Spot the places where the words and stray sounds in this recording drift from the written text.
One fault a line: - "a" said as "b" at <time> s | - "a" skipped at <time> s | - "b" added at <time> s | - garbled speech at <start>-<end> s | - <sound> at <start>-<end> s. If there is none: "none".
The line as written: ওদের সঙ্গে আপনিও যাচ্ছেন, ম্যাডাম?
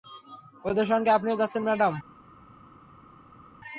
none